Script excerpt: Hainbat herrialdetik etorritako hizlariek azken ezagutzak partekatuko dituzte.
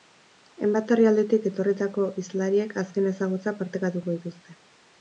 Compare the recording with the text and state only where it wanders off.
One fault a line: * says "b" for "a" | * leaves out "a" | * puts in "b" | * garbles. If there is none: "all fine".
all fine